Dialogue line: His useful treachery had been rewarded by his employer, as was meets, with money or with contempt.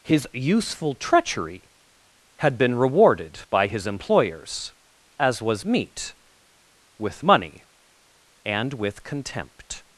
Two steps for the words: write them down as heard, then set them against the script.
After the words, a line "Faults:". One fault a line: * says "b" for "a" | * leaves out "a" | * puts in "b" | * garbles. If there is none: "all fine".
His useful treachery had been rewarded by his employers, as was meet, with money and with contempt.
Faults:
* says "employers" for "employer"
* says "meet" for "meets"
* says "and" for "or"